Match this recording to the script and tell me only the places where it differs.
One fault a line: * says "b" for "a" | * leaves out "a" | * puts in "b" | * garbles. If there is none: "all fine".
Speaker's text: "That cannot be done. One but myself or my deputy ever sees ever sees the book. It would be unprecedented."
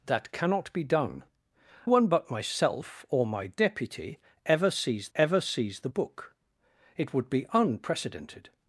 all fine